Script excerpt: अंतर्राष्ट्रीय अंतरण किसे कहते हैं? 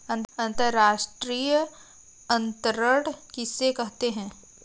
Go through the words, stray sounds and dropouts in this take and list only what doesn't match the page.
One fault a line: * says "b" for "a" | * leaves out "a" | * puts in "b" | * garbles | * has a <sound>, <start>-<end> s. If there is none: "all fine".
all fine